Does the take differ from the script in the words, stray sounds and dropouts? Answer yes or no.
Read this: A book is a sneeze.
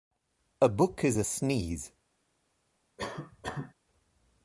yes